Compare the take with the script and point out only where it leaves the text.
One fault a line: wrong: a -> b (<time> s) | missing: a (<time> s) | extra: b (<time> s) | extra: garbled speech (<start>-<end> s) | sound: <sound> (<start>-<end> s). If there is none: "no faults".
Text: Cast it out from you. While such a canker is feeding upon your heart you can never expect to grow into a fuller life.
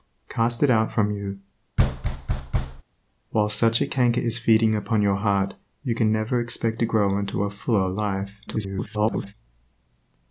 sound: thud (1.8-2.8 s)
extra: garbled speech (8.5-9.3 s)